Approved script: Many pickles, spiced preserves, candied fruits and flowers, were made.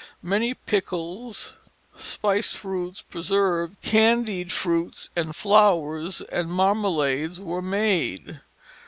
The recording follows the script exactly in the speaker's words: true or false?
false